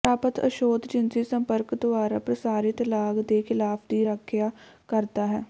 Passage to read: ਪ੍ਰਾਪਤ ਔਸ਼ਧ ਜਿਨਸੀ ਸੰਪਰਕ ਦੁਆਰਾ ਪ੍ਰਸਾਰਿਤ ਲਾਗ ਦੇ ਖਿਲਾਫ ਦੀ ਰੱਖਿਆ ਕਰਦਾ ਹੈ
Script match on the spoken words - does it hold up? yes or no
yes